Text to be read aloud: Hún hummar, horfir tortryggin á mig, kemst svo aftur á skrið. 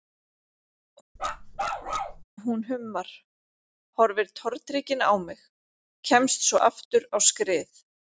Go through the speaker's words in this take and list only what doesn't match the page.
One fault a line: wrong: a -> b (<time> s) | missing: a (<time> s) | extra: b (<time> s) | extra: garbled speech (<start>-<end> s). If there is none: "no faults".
no faults